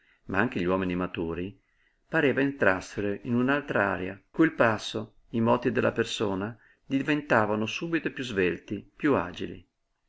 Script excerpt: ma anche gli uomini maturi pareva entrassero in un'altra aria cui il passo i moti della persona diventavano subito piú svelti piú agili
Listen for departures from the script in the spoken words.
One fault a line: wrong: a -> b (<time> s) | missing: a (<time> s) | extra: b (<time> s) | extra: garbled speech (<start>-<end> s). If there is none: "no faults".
no faults